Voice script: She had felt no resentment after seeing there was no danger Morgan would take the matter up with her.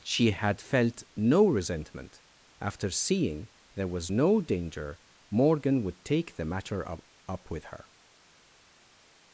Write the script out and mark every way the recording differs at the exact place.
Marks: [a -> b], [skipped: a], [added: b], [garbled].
She had felt no resentment after seeing there was no danger Morgan would take the matter up [added: up] with her.